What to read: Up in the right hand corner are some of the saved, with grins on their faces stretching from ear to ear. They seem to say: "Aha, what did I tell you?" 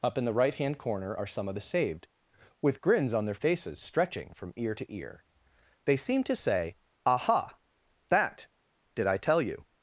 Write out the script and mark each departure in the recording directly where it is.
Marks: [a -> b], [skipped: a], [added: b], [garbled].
Up in the right hand corner are some of the saved, with grins on their faces stretching from ear to ear. They seem to say: "Aha, [what -> that] did I tell you?"